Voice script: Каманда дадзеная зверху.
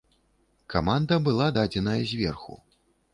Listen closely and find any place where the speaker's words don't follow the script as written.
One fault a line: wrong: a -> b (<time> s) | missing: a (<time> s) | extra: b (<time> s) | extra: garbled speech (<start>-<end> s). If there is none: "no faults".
extra: была (1.3 s)